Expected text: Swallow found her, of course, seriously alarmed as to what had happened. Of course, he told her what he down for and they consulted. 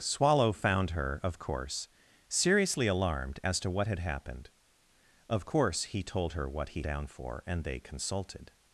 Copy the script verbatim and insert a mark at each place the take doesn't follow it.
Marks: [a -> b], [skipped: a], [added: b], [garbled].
Swallow found her, of course, seriously alarmed as to what had happened. Of course, he told her what he down for and they consulted.